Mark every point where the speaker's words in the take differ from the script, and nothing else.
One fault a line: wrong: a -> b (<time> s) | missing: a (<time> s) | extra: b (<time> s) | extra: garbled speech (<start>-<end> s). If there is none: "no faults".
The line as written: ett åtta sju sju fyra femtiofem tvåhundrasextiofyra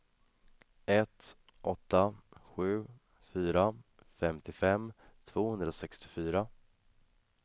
missing: sju (2.9 s)